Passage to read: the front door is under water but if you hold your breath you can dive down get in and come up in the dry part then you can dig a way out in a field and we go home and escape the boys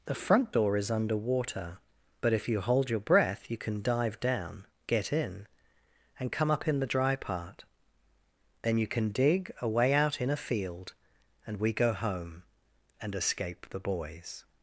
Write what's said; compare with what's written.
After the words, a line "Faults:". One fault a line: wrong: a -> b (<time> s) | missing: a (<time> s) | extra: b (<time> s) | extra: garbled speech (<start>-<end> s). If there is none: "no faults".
the front door is under water but if you hold your breath you can dive down get in and come up in the dry part then you can dig a way out in a field and we go home and escape the boys
Faults:
no faults